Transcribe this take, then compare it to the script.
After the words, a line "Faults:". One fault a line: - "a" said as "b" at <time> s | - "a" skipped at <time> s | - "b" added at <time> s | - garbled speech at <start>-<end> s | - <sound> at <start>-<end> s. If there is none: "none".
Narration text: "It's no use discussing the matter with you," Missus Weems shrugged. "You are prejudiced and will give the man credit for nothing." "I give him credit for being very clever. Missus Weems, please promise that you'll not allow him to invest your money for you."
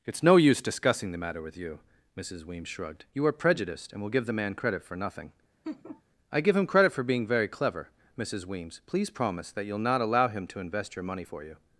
"It's no use discussing the matter with you," Missus Weems shrugged. "You are prejudiced and will give the man credit for nothing." "I give him credit for being very clever. Missus Weems, please promise that you'll not allow him to invest your money for you."
Faults:
- laugh at 5.6-6.0 s